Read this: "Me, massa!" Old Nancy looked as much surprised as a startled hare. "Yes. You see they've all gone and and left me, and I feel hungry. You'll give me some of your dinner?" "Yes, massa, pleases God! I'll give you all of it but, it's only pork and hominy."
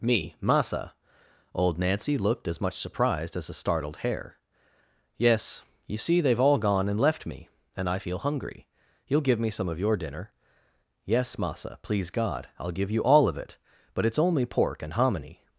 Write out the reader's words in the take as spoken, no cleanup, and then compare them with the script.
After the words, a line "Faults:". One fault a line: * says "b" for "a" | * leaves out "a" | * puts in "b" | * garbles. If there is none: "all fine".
"Me, massa!" Old Nancy looked as much surprised as a startled hare. "Yes. You see they've all gone and left me, and I feel hungry. You'll give me some of your dinner?" "Yes, massa, please God! I'll give you all of it but, it's only pork and hominy."
Faults:
* leaves out "and"
* says "please" for "pleases"